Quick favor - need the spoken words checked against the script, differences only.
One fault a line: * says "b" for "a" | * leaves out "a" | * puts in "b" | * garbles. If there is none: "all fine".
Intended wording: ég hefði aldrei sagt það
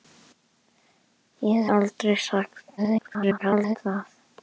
* leaves out "hefði"
* garbles